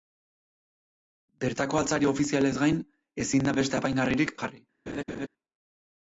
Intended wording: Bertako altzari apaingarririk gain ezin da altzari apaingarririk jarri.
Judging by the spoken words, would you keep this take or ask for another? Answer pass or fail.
fail